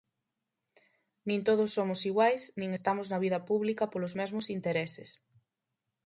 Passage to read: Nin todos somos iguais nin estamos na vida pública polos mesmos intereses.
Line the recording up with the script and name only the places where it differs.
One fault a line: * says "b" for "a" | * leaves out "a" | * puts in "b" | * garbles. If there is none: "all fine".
all fine